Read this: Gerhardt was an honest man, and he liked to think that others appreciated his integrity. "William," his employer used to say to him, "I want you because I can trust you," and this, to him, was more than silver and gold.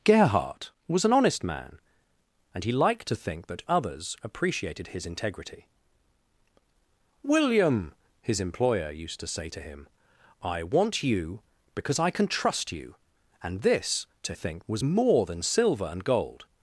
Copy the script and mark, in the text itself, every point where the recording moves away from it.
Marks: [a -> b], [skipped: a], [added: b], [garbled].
Gerhardt was an honest man, and he liked to think that others appreciated his integrity. "William," his employer used to say to him, "I want you because I can trust you," and this, to [him, -> think] was more than silver and gold.